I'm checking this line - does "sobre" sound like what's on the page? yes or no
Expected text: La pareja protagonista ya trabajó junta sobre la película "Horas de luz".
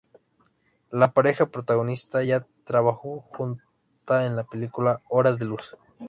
no